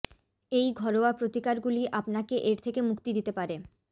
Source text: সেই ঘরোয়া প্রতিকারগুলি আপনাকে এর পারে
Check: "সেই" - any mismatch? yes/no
yes